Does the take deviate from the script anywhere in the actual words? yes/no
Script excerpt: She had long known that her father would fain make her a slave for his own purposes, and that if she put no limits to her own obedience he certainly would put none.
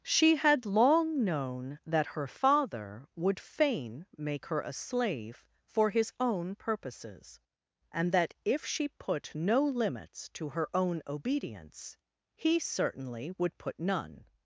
no